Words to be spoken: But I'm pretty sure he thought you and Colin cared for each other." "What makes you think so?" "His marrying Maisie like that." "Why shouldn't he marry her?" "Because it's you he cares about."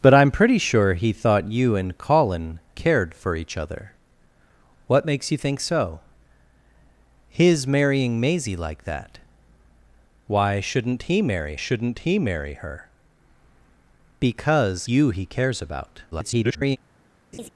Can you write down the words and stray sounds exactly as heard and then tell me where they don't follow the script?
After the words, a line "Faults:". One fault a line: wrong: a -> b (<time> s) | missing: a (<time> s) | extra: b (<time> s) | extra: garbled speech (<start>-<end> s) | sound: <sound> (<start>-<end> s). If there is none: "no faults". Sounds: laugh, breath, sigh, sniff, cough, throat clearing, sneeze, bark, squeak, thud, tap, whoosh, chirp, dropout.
But I'm pretty sure he thought you and Colin cared for each other." "What makes you think so?" "His marrying Maisie like that." "Why shouldn't he marry shouldn't he marry her?" "Because you he cares about." [garbled]
Faults:
extra: shouldn't he marry (11.5 s)
missing: it's (14.9 s)
extra: garbled speech (16.1-16.8 s)
sound: laugh (17.3-17.5 s)